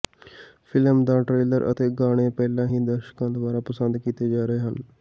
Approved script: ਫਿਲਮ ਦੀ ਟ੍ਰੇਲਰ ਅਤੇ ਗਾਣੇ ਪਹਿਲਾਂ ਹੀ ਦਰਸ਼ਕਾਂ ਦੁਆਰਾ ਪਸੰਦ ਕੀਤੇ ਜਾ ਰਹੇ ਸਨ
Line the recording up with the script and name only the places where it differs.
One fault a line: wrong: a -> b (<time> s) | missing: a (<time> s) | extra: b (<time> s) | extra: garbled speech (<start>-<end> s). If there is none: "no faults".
wrong: ਦੀ -> ਦਾ (1.1 s)
wrong: ਸਨ -> ਹਨ (4.6 s)